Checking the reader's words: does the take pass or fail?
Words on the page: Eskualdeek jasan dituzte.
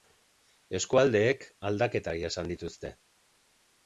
fail